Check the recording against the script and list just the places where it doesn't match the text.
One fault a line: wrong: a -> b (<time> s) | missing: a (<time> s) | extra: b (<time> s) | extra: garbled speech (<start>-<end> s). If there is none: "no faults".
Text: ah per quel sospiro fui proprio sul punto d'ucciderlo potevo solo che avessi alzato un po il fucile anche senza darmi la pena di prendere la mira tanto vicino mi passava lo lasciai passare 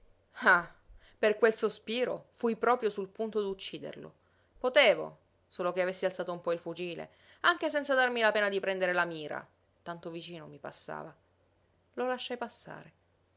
no faults